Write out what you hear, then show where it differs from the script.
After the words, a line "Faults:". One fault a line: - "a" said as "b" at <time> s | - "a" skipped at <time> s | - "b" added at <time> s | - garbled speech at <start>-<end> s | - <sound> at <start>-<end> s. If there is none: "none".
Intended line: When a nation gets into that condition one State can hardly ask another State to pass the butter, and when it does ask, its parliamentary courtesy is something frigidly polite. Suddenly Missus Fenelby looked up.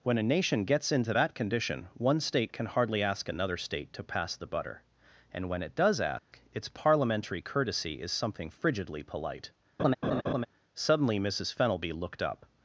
When a nation gets into that condition one State can hardly ask another State to pass the butter, and when it does ask, its parliamentary courtesy is something frigidly polite. Suddenly Missus Fenelby looked up.
Faults:
- dropout at 6.2-6.3 s
- laugh at 9.8-10.5 s